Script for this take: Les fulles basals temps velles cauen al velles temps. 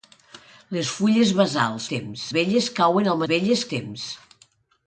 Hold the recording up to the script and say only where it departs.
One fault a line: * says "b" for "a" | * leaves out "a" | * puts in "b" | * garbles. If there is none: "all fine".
all fine